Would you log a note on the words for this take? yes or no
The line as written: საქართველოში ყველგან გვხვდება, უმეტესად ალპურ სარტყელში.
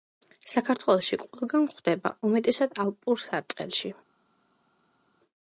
no